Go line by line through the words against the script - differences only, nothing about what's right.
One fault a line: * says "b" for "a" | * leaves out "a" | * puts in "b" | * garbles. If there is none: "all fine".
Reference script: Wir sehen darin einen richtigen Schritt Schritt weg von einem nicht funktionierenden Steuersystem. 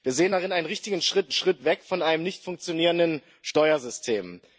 all fine